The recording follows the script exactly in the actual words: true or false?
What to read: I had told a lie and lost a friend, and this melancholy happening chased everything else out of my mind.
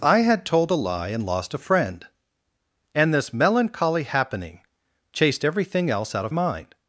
false